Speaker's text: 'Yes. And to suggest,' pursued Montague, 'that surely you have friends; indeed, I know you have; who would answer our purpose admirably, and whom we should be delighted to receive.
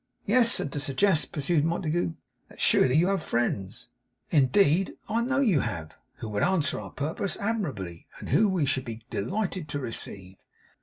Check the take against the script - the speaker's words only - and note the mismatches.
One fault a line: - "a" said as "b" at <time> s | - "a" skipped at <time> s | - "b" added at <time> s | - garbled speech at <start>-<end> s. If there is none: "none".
none